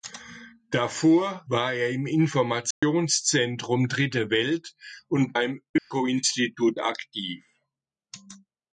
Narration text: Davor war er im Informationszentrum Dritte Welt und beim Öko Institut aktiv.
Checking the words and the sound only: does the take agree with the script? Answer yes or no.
no